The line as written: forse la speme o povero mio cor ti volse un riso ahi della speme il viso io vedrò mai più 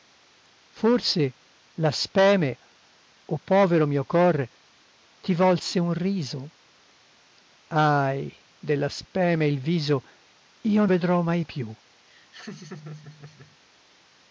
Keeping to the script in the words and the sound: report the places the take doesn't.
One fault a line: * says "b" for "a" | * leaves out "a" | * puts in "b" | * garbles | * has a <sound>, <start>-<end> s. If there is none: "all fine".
* has a laugh, 12.1-13.6 s